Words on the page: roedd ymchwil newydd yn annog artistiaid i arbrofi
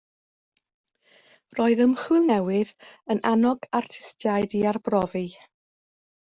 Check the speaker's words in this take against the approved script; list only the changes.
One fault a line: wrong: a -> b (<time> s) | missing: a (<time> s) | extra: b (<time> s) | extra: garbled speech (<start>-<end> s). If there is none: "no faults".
no faults